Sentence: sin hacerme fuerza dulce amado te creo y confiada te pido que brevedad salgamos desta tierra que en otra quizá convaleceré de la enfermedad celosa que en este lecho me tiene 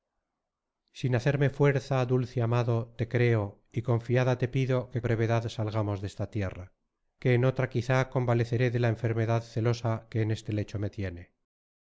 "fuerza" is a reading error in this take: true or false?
false